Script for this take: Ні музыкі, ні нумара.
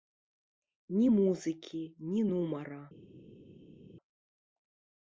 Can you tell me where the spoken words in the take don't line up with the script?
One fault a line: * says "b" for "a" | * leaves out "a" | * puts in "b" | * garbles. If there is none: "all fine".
all fine